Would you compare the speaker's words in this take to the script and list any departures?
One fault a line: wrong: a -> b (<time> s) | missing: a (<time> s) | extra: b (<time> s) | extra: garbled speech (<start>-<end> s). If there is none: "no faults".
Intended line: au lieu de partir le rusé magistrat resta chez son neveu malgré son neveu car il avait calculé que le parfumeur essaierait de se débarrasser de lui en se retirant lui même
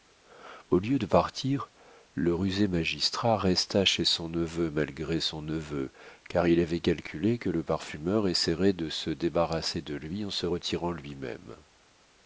no faults